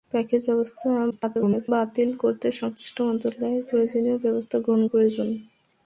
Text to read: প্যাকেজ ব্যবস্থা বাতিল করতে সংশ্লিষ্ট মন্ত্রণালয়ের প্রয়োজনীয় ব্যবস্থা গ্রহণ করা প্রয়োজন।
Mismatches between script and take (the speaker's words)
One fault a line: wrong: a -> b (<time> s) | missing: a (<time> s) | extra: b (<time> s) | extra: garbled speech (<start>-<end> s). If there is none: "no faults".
extra: garbled speech (1.1-1.7 s)
missing: করা (4.8 s)